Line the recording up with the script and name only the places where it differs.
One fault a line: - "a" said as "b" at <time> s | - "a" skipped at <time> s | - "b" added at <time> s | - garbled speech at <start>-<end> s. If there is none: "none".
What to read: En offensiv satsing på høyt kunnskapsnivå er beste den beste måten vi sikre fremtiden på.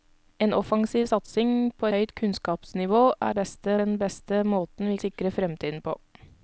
none